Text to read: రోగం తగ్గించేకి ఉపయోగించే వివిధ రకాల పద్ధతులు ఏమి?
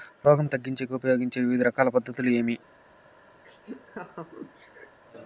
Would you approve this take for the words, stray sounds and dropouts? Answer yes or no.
no